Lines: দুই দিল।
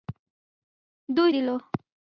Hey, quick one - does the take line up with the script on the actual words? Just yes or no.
yes